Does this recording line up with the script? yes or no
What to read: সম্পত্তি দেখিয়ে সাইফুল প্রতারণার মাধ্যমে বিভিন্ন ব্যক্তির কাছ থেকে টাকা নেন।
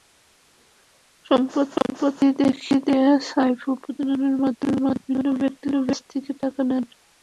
yes